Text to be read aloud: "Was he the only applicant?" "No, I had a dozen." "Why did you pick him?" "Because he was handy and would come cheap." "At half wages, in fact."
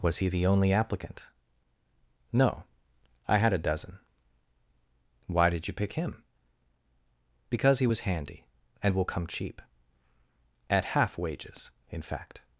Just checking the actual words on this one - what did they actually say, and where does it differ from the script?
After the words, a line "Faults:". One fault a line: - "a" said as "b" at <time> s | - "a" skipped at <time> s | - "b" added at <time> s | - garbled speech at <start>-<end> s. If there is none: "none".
"Was he the only applicant?" "No, I had a dozen." "Why did you pick him?" "Because he was handy and will come cheap." "At half wages, in fact."
Faults:
- "would" said as "will" at 8.9 s